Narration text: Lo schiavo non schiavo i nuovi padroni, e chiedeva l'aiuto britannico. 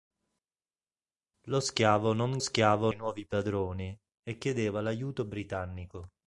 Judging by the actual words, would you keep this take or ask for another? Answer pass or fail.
pass